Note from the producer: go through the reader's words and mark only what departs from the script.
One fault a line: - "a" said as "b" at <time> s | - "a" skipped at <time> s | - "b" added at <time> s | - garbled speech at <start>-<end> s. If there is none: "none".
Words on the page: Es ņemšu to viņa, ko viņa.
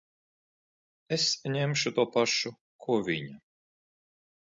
- "viņa" said as "pašu" at 2.1 s